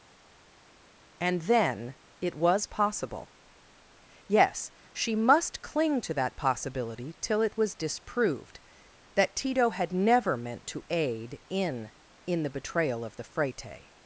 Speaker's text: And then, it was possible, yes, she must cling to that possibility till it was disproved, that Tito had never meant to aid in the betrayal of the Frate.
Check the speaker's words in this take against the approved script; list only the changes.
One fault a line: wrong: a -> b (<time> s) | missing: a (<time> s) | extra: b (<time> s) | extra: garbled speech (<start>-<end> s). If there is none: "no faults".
extra: in (12.2 s)